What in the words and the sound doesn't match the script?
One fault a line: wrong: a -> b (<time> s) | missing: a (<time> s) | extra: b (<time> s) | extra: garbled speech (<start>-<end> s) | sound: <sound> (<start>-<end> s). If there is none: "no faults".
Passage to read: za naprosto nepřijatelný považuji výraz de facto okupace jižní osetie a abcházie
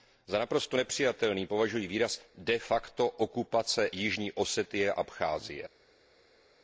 no faults